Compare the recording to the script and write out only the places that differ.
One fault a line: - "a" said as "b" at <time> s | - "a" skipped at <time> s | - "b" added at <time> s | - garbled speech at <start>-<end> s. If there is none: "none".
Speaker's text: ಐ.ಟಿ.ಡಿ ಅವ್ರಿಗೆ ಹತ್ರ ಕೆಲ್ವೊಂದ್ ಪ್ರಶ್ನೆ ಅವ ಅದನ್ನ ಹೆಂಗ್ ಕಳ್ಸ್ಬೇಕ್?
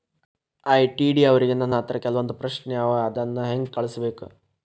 - "ನನ್" added at 1.5 s